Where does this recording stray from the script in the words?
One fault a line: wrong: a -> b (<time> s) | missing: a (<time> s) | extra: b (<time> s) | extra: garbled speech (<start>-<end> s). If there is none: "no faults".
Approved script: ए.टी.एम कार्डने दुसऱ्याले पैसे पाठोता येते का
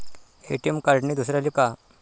missing: पैसे पाठोता येते (1.5 s)